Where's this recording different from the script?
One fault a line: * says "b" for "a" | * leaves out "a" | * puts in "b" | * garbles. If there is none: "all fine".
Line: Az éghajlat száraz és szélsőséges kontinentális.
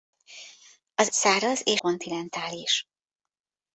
* leaves out "éghajlat"
* leaves out "szélsőséges"